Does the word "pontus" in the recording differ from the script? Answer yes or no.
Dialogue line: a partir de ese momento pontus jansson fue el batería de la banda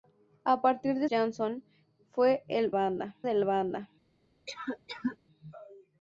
yes